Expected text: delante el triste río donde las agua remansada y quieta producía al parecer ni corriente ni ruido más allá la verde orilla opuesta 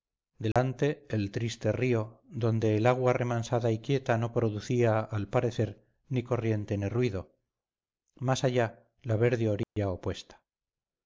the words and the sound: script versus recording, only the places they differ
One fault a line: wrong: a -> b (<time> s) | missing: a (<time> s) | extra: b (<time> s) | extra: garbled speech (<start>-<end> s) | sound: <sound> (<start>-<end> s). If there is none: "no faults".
sound: dropout (0.5-0.6 s)
wrong: las -> el (2.8 s)
extra: no (4.2 s)
sound: dropout (9.6-9.8 s)